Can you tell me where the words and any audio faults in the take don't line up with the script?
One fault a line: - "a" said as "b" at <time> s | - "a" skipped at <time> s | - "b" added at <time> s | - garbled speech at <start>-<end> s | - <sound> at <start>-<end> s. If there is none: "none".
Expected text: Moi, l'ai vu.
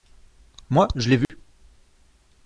- "je" added at 0.9 s
- dropout at 1.2-1.3 s